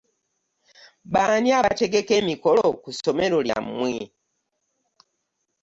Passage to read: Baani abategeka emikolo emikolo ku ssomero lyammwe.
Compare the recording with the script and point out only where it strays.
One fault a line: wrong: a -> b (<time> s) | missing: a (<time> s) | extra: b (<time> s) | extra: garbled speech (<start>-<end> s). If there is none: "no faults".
missing: emikolo (2.6 s)